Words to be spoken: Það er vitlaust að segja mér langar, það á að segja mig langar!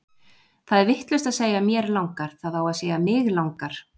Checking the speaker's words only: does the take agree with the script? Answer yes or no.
yes